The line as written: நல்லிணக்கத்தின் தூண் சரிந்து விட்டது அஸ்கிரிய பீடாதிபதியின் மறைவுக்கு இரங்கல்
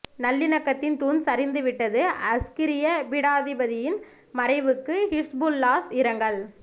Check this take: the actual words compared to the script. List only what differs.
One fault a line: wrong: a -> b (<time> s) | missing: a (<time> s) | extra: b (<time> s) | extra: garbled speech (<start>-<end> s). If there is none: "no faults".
extra: ஹிஸ்புல்லாஹ் (5.1 s)